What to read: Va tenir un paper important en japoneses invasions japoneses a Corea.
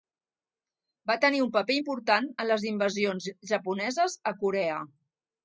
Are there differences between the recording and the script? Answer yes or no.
yes